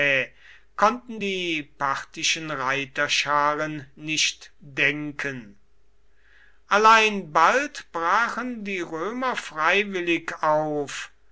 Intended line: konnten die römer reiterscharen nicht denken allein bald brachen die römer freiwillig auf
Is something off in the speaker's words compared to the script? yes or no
yes